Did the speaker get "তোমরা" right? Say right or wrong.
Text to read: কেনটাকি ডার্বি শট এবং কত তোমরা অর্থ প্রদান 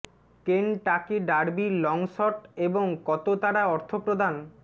wrong